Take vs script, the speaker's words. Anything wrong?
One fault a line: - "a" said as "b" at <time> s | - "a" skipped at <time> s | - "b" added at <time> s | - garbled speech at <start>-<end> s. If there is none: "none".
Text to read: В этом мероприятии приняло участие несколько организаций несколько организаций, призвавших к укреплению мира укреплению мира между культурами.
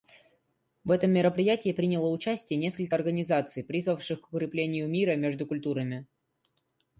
- "несколько организаций" skipped at 3.6 s
- "укреплению мира" skipped at 5.1 s